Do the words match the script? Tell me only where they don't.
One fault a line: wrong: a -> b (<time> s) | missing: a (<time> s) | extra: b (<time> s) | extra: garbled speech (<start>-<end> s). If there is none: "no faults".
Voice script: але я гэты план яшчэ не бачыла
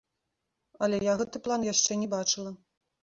no faults